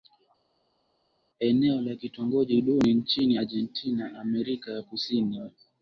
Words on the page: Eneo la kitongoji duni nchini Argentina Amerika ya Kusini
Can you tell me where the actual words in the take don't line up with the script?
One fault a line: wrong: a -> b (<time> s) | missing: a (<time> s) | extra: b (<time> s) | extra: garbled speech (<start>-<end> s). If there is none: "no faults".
no faults